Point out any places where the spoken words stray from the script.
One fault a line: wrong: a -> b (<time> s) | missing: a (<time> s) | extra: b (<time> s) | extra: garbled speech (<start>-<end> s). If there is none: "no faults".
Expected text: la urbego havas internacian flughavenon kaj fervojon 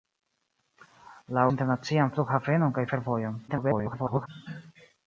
missing: urbego havas (1.4 s)
extra: garbled speech (3.5-4.3 s)